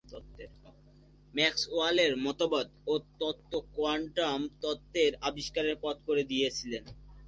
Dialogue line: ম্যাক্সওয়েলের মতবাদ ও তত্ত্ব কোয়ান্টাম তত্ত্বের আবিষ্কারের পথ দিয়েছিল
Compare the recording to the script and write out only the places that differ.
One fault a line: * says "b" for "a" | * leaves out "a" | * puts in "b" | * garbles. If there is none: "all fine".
* puts in "করে"